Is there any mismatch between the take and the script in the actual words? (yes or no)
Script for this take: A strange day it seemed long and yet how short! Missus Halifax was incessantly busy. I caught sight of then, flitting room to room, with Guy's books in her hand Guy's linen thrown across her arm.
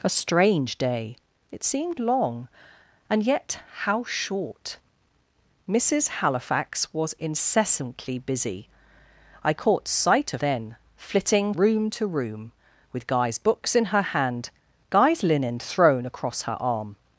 no